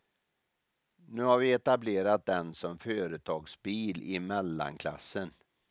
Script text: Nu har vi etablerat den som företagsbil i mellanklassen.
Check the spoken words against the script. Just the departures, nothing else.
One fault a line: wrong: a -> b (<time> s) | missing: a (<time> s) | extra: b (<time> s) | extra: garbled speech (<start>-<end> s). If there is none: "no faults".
no faults